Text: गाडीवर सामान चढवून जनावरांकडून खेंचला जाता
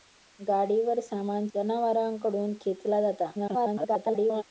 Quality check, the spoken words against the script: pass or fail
fail